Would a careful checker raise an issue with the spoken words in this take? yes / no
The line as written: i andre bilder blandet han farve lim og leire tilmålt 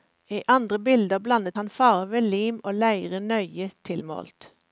yes